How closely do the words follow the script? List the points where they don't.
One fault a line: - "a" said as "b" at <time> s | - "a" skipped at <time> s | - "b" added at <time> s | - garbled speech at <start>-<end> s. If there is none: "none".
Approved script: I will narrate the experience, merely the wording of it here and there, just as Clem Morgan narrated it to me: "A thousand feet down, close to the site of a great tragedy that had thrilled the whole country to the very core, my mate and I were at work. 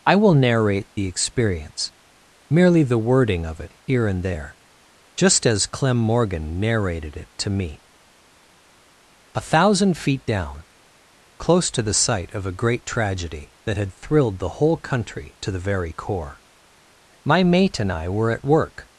none